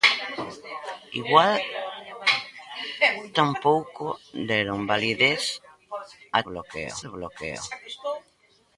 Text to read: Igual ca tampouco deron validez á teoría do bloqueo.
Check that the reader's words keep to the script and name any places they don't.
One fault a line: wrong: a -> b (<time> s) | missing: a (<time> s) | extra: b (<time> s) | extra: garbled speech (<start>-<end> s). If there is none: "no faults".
missing: ca (1.6 s)
wrong: teoría -> bloqueo (6.5 s)